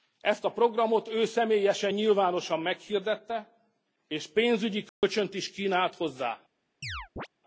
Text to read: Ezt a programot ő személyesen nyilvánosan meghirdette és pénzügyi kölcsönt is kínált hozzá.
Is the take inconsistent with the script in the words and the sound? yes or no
yes